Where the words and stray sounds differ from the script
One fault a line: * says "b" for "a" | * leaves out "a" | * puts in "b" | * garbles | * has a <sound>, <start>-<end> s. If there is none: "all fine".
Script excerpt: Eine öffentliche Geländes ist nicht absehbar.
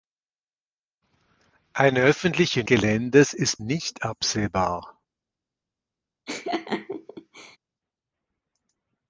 * has a laugh, 6.3-7.6 s